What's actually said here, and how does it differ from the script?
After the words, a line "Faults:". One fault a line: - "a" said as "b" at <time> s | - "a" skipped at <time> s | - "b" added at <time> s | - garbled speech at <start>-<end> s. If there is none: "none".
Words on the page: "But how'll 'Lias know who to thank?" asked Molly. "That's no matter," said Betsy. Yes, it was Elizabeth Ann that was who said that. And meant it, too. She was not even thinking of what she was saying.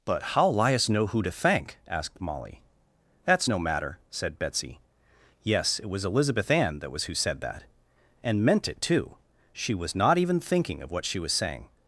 "But how'll 'Lias know who to thank?" asked Molly. "That's no matter," said Betsy. Yes, it was Elizabeth Ann that was who said that. And meant it, too. She was not even thinking of what she was saying.
Faults:
none